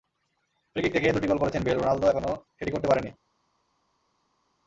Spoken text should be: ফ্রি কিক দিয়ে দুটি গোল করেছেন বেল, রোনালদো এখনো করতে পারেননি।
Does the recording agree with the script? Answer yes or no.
no